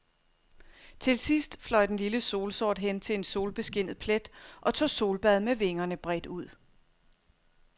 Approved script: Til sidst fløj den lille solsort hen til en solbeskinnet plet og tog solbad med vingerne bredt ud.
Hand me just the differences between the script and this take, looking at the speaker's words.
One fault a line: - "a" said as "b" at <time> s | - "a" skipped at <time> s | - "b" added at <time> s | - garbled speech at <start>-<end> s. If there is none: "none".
none